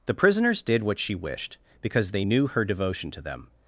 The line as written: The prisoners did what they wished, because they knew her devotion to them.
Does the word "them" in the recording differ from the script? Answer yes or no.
no